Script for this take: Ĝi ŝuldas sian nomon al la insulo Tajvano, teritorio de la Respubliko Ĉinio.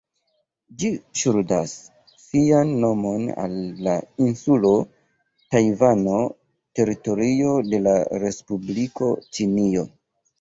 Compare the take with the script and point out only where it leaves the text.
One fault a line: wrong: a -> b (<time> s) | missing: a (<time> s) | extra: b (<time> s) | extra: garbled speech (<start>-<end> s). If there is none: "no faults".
no faults